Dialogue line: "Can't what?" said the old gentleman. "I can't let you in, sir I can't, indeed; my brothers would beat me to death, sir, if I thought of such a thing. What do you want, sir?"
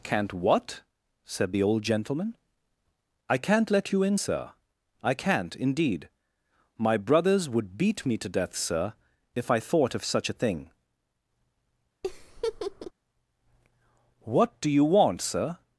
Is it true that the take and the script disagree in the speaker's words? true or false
false